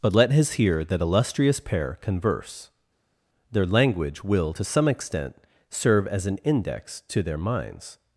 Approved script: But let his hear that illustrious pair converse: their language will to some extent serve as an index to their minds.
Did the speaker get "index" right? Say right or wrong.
right